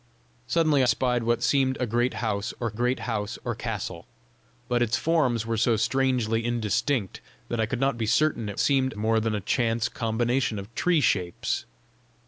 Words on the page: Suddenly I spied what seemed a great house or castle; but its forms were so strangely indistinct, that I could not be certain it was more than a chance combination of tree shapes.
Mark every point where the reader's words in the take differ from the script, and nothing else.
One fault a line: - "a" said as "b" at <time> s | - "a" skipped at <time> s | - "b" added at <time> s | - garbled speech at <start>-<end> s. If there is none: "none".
- "I" skipped at 0.8 s
- "great house or" added at 2.7 s
- "was" said as "seemed" at 8.6 s